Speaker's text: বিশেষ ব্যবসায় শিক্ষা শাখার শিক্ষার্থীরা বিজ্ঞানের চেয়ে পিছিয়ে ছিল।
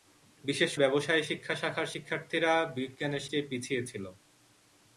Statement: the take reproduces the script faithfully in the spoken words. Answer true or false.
true